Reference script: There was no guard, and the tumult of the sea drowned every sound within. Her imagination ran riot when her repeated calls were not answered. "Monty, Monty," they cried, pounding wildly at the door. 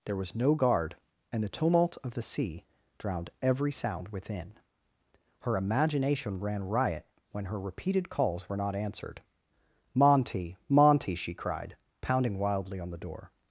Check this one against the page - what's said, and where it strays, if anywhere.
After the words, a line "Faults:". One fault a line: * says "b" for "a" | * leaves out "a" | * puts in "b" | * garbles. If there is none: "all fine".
There was no guard, and the tumult of the sea drowned every sound within. Her imagination ran riot when her repeated calls were not answered. "Monty, Monty," she cried, pounding wildly on the door.
Faults:
* says "she" for "they"
* says "on" for "at"